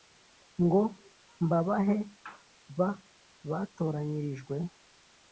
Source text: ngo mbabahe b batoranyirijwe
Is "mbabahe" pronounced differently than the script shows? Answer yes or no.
no